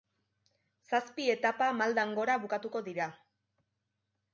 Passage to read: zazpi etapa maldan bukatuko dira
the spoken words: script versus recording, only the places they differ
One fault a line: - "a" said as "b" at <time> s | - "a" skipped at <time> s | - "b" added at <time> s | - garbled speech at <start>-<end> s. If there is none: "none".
- "gora" added at 2.2 s